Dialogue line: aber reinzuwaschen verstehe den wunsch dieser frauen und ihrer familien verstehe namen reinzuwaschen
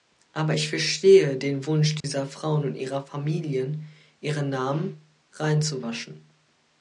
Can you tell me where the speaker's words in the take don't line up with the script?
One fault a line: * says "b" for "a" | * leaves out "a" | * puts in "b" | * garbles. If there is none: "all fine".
* says "ich" for "reinzuwaschen"
* says "ihre" for "verstehe"